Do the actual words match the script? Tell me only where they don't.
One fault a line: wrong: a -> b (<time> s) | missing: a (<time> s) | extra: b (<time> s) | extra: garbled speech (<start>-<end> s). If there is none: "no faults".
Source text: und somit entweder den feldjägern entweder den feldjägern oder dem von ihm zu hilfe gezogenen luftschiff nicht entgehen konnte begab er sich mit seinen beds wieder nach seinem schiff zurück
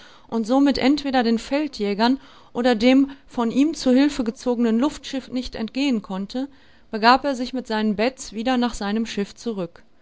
missing: entweder den feldjägern (2.2 s)